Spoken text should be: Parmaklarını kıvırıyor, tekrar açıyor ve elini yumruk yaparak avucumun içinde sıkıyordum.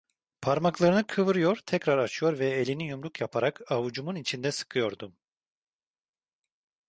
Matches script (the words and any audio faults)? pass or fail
pass